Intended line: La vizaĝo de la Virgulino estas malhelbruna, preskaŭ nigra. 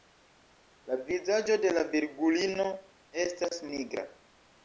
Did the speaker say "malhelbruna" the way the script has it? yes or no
no